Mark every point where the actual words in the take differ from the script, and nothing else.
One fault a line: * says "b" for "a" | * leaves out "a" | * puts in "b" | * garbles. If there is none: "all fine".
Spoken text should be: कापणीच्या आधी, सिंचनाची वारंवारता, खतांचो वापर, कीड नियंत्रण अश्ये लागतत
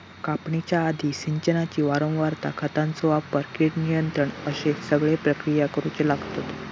* puts in "सगळे प्रक्रिया करुचे"